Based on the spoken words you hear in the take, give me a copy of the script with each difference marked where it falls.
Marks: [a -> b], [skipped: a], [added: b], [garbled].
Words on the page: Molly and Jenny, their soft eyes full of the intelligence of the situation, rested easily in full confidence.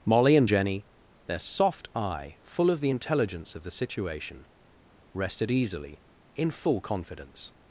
Molly and Jenny, their soft [eyes -> eye] full of the intelligence of the situation, rested easily in full confidence.